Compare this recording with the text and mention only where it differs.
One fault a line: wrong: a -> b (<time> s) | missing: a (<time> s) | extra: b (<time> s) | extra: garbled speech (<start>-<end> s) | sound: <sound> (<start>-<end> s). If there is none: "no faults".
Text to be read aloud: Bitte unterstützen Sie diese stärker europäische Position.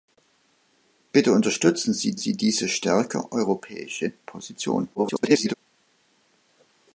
extra: Sie (2.1 s)
extra: garbled speech (4.9-5.5 s)